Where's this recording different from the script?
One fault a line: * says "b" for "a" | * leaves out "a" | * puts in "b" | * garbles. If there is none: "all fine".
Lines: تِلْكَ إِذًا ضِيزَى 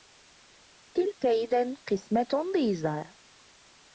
* puts in "قِسْمَةٌ"